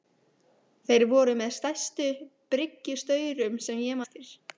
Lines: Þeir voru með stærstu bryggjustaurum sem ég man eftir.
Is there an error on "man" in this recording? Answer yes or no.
yes